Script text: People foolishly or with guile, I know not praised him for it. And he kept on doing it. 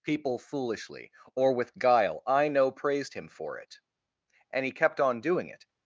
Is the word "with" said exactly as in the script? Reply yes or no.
yes